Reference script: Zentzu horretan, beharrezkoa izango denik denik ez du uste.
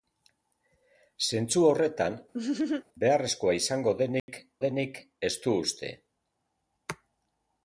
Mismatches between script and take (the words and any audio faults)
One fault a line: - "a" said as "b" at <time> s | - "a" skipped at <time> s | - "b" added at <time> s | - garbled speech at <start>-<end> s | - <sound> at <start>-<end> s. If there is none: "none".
- laugh at 2.3-2.8 s
- dropout at 4.2-4.3 s